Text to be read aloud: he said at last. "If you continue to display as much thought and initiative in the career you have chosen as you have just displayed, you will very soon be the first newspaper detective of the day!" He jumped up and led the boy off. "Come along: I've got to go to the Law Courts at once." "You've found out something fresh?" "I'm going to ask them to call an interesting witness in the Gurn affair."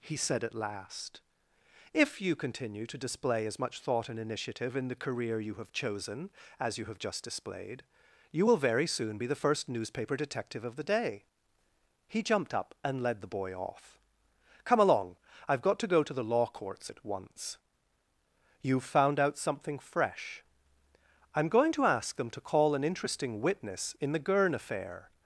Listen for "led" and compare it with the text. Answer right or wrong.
right